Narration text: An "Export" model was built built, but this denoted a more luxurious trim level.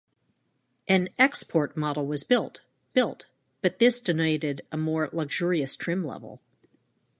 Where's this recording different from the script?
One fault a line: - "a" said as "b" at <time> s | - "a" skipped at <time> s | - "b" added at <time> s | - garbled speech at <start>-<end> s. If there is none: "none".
none